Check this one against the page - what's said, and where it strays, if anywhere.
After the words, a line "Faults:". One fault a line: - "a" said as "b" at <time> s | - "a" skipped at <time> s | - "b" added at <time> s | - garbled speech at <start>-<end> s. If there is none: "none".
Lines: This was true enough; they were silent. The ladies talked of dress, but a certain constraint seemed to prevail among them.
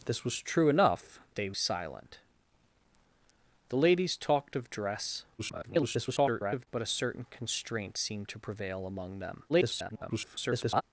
This was true enough; they silent. The ladies talked of dress, [garbled] but a certain constraint seemed to prevail among them. [garbled]
Faults:
- "were" skipped at 1.5 s
- garbled speech at 5.4-6.7 s
- garbled speech at 9.5-10.8 s